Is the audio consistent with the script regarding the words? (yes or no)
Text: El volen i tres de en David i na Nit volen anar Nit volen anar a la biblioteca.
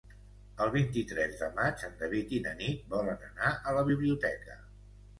no